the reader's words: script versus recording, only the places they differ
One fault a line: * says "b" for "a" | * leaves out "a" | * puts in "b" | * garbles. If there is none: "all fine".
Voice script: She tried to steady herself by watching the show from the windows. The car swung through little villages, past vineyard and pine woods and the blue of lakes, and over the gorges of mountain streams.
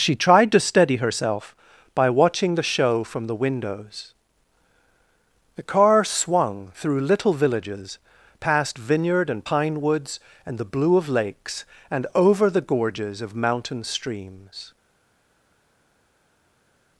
all fine